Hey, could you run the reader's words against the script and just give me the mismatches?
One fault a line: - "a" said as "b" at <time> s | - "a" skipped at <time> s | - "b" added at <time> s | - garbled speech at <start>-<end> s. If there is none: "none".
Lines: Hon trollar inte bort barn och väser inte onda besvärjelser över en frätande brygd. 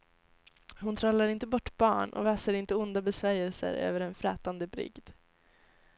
none